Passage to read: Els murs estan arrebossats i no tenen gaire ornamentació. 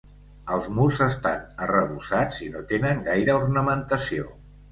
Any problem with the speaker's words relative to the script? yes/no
no